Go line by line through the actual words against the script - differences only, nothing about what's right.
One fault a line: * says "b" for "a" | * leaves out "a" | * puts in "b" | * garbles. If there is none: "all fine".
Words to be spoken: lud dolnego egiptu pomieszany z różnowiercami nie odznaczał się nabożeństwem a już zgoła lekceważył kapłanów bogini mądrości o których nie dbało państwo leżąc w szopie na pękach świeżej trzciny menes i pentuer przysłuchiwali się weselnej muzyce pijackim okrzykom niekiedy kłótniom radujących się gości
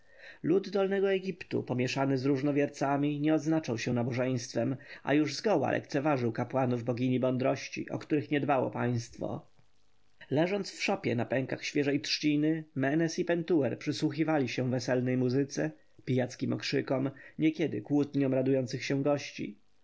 all fine